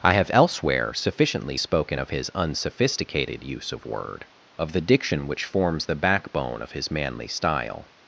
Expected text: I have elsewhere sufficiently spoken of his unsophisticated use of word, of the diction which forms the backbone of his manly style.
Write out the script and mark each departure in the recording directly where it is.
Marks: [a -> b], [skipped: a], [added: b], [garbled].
I have elsewhere sufficiently spoken of his unsophisticated use of word, of the diction which forms the backbone of his manly style.